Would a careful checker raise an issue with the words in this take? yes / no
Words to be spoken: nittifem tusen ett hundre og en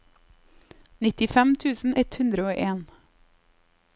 no